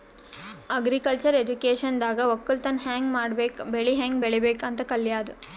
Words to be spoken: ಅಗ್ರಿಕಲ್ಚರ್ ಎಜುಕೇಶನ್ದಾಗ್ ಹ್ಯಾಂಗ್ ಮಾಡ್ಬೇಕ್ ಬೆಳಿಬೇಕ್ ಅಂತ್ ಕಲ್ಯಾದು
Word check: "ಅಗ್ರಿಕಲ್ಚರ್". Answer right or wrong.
right